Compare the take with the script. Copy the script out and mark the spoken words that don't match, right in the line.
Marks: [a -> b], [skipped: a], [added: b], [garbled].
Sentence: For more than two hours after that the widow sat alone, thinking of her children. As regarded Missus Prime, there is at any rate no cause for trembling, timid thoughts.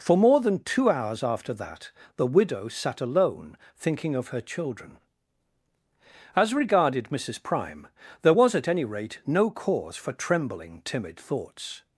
For more than two hours after that the widow sat alone, thinking of her children. As regarded Missus Prime, there [is -> was] at any rate no cause for trembling, timid thoughts.